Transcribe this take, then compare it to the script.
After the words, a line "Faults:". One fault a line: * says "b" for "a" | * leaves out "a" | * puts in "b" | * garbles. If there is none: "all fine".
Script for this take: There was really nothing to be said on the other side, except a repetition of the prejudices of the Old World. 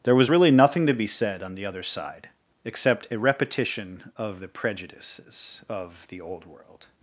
There was really nothing to be said on the other side, except a repetition of the prejudices of the Old World.
Faults:
all fine